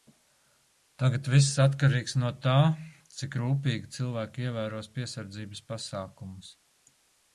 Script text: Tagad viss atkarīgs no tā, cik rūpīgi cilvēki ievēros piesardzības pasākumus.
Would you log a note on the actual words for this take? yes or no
no